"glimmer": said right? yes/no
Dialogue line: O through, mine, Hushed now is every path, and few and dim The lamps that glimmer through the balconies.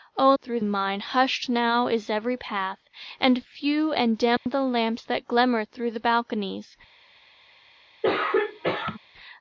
yes